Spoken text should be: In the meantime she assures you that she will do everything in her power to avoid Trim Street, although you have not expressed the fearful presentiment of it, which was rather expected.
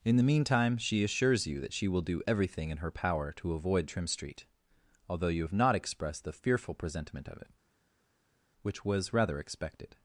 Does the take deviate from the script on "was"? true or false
false